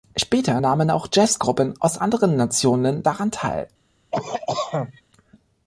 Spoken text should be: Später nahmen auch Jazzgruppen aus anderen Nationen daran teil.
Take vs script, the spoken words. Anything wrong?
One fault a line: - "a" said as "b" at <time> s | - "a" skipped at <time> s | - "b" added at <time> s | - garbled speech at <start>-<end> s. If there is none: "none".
none